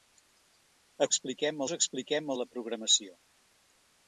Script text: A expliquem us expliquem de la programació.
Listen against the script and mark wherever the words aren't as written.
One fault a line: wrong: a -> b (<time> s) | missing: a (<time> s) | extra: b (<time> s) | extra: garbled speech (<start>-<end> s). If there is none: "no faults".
no faults